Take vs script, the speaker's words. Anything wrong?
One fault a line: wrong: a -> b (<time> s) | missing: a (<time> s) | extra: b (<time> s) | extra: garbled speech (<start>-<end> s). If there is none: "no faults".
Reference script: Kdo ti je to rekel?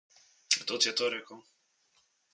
no faults